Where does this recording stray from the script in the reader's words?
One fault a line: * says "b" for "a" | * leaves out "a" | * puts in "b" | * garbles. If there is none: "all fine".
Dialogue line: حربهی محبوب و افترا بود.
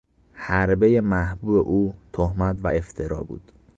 * puts in "او تهمت"